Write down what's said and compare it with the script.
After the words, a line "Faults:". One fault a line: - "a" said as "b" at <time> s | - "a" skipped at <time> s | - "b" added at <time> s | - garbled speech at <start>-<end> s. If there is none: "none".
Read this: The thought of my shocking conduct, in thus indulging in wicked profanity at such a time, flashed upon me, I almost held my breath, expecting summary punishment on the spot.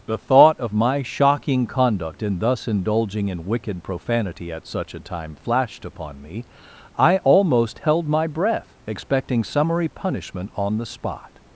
The thought of my shocking conduct, in thus indulging in wicked profanity at such a time, flashed upon me, I almost held my breath, expecting summary punishment on the spot.
Faults:
none